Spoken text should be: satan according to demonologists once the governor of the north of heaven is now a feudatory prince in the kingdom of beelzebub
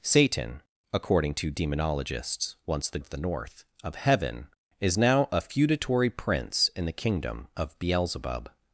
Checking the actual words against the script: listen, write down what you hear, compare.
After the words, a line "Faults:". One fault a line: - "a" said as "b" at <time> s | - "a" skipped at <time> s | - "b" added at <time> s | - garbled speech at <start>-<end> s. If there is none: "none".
satan according to demonologists once the of the north of heaven is now a feudatory prince in the kingdom of beelzebub
Faults:
- "governor" skipped at 3.0 s